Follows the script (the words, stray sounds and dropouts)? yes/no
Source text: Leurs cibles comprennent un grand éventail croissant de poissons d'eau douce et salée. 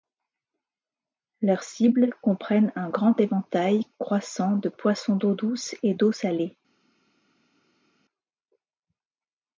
no